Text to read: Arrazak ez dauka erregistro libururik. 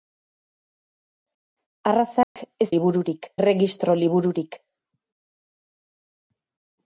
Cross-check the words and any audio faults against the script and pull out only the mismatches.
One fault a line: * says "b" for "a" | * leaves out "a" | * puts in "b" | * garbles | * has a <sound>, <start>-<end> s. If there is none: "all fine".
* has a dropout, 2.2-2.4 s
* says "libururik" for "dauka"